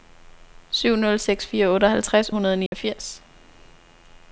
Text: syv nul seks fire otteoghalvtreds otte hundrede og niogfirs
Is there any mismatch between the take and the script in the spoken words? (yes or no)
yes